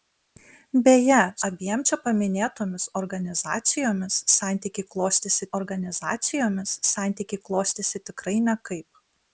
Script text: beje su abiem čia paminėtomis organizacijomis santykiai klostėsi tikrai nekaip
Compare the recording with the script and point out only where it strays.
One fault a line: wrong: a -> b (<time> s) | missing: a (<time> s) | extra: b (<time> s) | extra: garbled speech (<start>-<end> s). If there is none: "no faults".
missing: su (1.2 s)
extra: organizacijomis santykiai klostėsi (5.6 s)